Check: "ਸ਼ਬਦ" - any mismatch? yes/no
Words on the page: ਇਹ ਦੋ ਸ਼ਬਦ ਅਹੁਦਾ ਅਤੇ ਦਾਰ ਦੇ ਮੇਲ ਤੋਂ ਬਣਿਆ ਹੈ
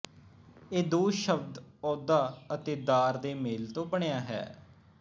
no